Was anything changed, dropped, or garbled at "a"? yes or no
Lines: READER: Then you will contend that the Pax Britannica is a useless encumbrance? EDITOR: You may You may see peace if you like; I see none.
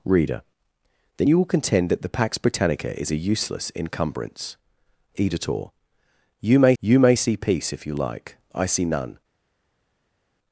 no